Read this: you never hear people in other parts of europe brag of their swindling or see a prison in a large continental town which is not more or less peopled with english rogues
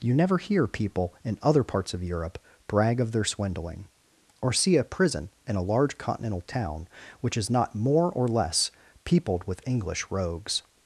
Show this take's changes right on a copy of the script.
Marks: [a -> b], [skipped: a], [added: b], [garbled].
you never hear people in other parts of europe brag of their swindling or see a prison in a large continental town which is not more or less peopled with english rogues